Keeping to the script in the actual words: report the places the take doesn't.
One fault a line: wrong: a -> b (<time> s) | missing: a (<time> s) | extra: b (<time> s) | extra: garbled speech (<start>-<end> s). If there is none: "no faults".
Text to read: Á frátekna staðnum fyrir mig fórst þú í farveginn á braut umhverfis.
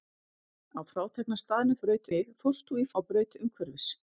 wrong: fyrir -> braut (1.8 s)
missing: farveginn (2.9 s)